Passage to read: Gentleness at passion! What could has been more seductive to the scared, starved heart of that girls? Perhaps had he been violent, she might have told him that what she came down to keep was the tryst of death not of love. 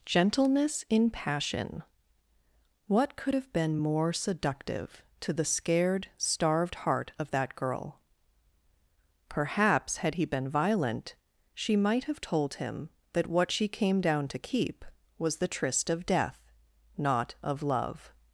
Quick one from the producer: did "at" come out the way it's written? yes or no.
no